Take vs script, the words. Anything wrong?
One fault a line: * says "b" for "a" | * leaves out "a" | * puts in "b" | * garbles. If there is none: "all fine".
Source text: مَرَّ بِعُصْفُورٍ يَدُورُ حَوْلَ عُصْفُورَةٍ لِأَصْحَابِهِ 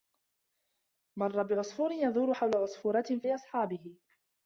all fine